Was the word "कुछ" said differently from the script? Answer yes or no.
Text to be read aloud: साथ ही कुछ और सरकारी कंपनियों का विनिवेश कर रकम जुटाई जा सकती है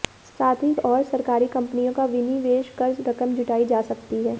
yes